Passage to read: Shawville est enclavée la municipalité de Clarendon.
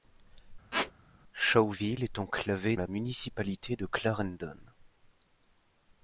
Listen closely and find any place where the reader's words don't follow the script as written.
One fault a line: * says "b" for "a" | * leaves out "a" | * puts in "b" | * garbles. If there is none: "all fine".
all fine